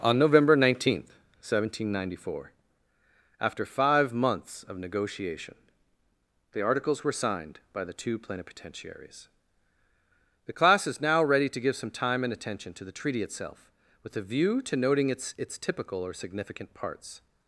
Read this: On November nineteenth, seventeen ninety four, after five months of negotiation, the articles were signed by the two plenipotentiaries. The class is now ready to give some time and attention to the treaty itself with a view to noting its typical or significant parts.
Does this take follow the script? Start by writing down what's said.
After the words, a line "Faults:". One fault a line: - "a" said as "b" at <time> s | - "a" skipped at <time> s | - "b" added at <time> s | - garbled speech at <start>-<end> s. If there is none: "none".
On November nineteenth, seventeen ninety four, after five months of negotiation, the articles were signed by the two plenipotentiaries. The class is now ready to give some time and attention to the treaty itself with a view to noting its its typical or significant parts.
Faults:
- "its" added at 15.4 s